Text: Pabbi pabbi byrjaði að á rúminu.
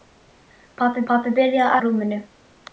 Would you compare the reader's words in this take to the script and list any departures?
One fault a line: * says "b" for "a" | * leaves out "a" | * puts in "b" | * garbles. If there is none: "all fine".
all fine